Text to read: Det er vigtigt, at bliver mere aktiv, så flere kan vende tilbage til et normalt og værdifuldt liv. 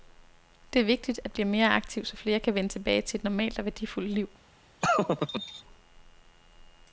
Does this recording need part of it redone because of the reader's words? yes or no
no